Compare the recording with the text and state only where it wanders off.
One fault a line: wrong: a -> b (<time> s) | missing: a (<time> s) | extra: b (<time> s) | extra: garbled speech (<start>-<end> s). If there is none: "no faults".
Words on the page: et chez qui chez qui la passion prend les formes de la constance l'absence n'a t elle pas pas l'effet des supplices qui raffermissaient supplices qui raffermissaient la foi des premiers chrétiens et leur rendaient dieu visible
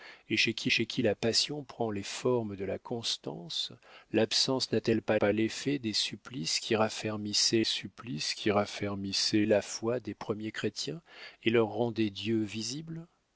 no faults